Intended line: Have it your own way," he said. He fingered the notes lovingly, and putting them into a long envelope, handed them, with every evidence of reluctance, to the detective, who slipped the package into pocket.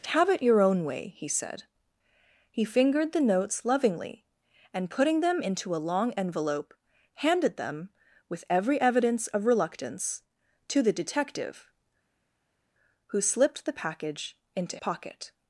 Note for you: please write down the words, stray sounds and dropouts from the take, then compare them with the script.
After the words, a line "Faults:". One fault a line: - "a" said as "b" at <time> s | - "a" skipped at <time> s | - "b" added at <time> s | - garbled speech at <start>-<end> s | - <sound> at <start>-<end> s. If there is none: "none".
Have it your own way," he said. He fingered the notes lovingly, and putting them into a long envelope, handed them, with every evidence of reluctance, to the detective, who slipped the package into pocket.
Faults:
none